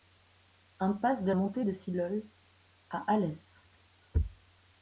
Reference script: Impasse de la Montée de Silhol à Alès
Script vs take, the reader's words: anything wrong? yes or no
yes